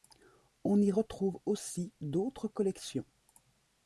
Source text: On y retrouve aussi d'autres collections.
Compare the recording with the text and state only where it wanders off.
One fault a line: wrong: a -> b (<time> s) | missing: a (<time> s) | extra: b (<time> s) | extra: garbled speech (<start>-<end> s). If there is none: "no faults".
no faults